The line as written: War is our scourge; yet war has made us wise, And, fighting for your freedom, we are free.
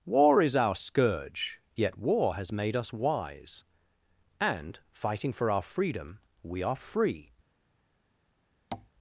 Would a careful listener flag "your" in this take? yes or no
yes